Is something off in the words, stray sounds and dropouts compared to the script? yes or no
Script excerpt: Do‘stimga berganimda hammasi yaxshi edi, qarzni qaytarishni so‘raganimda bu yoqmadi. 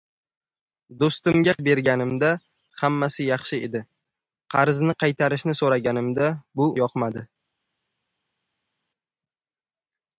no